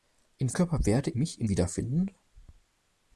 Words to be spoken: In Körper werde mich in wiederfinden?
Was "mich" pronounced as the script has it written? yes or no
yes